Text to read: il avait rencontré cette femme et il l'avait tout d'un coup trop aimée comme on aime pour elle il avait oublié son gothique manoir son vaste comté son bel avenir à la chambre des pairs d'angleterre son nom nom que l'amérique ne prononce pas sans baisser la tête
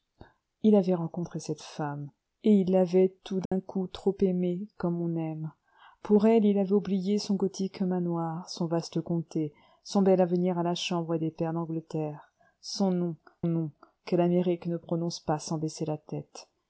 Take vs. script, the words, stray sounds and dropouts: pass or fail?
fail